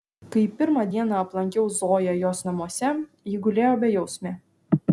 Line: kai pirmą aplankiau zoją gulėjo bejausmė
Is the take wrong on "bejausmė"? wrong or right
right